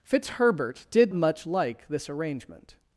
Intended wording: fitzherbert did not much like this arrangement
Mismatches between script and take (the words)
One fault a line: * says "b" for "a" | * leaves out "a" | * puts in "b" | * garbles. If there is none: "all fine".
* leaves out "not"